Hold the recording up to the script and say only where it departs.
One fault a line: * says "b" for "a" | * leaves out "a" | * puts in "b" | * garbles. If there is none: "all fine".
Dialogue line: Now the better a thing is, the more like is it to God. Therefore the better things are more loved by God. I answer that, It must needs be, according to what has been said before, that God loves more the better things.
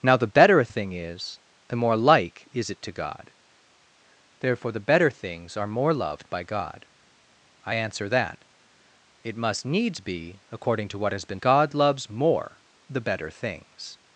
* leaves out "said before that"